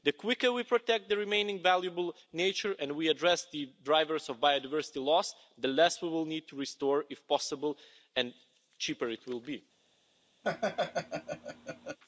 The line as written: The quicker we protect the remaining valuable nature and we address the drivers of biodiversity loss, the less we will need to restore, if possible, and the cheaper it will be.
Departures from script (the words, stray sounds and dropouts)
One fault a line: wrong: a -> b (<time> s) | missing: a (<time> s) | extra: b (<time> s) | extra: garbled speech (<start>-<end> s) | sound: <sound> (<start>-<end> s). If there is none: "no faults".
sound: laugh (10.4-12.0 s)